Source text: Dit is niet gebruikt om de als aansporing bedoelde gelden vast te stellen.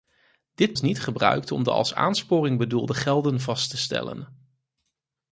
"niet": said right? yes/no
yes